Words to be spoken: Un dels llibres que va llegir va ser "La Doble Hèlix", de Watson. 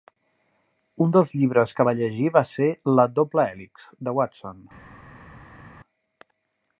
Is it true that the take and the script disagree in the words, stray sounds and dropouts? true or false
false